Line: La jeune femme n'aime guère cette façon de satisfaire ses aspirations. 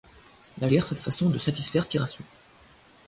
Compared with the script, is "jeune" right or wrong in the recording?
wrong